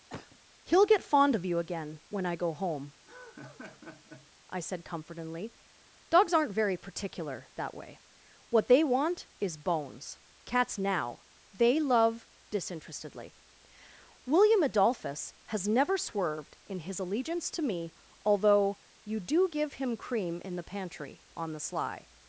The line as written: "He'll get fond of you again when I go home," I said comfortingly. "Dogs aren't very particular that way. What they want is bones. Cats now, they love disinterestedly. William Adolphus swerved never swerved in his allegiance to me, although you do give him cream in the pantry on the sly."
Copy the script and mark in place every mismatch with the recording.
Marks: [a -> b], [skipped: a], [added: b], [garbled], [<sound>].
[cough] "He'll get fond of you again when I go home," [laugh] I said comfortingly. "Dogs aren't very particular that way. What they want is bones. Cats now, they love disinterestedly. William Adolphus [swerved -> has] never swerved in his allegiance to me, although you do give him cream in the pantry on the sly."